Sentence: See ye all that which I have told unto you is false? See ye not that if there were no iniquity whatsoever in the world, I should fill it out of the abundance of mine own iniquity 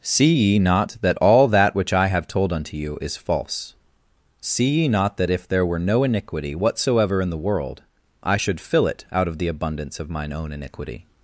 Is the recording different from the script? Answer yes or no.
yes